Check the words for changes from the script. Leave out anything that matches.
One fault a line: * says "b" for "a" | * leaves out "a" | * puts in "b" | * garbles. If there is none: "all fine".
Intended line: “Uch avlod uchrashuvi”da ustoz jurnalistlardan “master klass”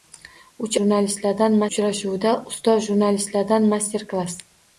* says "jurnalistlardan" for "avlod"